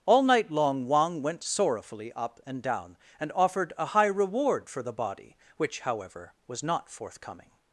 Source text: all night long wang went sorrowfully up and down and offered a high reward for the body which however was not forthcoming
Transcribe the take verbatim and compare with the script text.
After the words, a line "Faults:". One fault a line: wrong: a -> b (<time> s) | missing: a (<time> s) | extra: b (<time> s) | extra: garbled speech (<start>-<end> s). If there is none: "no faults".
all night long wang went sorrowfully up and down and offered a high reward for the body which however was not forthcoming
Faults:
no faults